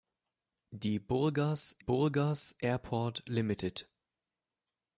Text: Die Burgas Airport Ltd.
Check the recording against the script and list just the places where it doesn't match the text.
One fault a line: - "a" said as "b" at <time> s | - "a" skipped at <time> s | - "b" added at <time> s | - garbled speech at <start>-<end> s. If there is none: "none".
- "Burgas" added at 1.8 s